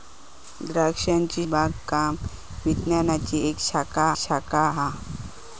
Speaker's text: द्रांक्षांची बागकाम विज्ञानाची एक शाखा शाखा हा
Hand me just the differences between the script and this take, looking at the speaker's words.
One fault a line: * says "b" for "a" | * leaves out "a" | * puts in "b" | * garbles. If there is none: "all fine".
all fine